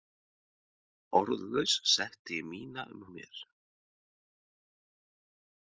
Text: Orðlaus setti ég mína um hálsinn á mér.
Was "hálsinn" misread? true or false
true